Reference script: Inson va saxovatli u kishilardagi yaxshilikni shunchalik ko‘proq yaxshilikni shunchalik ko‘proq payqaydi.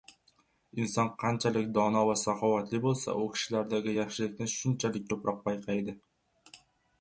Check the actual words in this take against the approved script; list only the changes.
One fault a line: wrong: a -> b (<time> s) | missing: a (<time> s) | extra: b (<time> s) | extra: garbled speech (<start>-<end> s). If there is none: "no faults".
extra: qanchalik dono (1.2 s)
extra: bo‘lsa (2.9 s)
missing: yaxshilikni shunchalik ko‘proq (5.4 s)